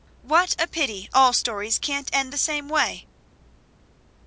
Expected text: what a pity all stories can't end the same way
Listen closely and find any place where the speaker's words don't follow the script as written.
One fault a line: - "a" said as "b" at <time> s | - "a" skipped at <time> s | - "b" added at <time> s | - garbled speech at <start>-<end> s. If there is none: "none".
none